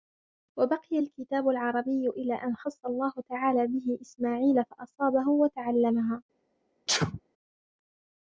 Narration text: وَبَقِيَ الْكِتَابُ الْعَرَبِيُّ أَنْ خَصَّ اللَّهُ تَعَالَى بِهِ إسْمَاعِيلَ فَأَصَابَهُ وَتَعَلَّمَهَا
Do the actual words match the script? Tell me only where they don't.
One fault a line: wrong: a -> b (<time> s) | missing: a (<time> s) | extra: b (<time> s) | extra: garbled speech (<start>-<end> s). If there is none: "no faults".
extra: إلَى (2.1 s)